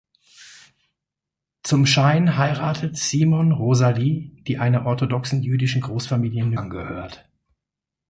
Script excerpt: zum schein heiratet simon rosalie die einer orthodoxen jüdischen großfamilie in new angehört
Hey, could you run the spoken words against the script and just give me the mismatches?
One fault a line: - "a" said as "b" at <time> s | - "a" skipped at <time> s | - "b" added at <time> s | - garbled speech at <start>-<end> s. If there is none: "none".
none